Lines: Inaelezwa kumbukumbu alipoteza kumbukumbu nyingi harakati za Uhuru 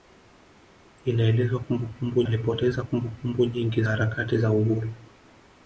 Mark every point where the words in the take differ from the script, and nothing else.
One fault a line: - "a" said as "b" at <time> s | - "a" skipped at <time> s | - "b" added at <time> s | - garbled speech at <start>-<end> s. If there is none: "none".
none